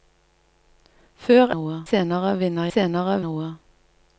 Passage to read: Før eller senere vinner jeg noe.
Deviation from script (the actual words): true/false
true